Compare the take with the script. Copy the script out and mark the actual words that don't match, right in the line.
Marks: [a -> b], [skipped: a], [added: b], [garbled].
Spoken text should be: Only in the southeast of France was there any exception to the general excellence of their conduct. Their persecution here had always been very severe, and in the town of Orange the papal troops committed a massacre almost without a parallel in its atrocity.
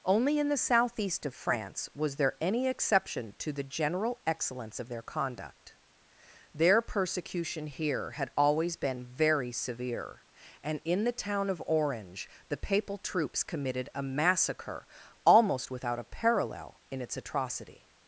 Only in the southeast of France was there any exception to the general excellence of their conduct. Their persecution here had always been very severe, and in the town of Orange the papal troops committed a massacre almost without a parallel in its atrocity.